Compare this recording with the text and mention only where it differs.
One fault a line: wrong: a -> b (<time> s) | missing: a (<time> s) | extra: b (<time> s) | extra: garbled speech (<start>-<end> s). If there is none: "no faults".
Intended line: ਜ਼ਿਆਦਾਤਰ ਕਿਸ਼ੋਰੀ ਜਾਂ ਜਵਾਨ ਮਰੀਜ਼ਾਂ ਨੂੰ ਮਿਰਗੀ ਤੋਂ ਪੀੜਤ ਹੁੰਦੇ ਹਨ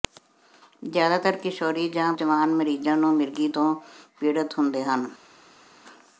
no faults